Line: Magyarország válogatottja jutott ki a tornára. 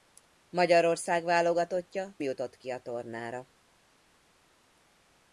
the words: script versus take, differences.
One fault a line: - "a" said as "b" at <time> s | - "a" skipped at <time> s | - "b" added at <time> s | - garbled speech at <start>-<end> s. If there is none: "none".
none